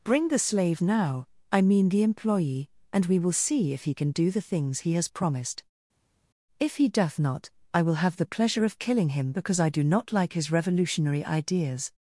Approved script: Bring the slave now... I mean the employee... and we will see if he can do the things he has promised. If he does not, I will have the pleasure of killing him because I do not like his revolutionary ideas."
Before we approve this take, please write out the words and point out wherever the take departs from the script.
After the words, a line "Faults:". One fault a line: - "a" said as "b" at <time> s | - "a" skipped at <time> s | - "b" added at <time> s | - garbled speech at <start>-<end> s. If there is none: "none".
Bring the slave now... I mean the employee... and we will see if he can do the things he has promised. If he doth not, I will have the pleasure of killing him because I do not like his revolutionary ideas."
Faults:
- "does" said as "doth" at 6.9 s